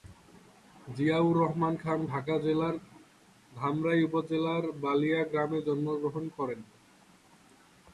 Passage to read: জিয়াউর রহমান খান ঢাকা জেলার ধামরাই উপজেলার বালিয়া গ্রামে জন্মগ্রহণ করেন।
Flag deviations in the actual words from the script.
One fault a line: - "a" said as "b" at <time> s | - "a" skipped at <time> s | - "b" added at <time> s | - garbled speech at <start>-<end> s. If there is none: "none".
none